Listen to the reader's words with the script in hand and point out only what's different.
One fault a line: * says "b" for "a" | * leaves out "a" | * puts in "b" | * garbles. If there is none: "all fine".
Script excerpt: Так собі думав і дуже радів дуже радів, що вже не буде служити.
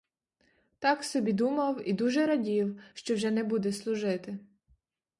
* leaves out "дуже радів"